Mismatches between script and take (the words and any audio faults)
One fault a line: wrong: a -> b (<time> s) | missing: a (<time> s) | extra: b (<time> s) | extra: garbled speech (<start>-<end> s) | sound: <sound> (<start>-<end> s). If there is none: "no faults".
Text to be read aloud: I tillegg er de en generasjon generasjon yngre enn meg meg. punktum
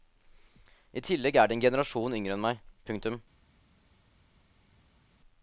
missing: generasjon (2.2 s)
missing: meg (2.6 s)